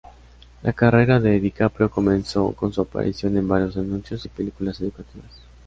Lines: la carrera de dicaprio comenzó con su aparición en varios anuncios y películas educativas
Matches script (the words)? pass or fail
pass